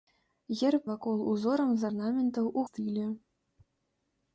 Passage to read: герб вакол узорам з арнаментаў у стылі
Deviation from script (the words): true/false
false